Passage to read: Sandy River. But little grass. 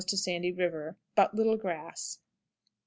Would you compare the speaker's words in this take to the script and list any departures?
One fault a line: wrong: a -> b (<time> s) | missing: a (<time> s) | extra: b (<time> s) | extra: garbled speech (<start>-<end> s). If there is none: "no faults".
no faults